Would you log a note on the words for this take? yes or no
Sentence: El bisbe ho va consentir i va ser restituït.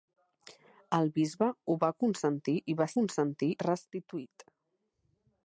yes